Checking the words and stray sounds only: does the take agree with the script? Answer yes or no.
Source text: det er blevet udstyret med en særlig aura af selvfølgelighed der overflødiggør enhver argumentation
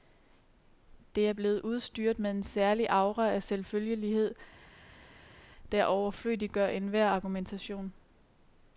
yes